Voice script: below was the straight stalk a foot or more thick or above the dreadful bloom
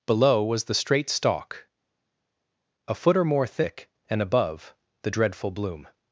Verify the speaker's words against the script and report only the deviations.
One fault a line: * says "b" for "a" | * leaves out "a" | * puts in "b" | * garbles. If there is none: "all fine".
* says "and" for "or"